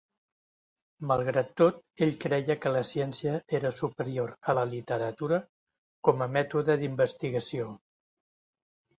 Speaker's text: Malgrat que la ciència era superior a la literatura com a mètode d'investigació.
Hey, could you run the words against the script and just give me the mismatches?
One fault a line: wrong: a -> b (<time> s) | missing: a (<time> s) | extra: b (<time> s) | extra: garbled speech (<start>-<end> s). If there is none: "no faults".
extra: tot ell creia (1.6 s)